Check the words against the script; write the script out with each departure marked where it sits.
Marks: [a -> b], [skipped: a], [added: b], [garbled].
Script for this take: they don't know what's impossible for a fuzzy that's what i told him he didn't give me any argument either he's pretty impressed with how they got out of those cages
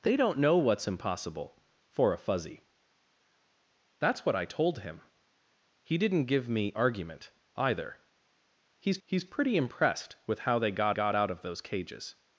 they don't know what's impossible for a fuzzy that's what i told him he didn't give me [skipped: any] argument either he's [added: he's] pretty impressed with how they got [added: got] out of those cages